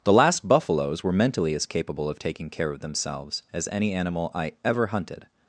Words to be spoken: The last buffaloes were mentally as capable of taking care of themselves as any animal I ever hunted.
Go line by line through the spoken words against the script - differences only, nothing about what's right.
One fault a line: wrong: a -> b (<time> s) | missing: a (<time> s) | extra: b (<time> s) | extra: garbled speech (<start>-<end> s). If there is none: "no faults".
no faults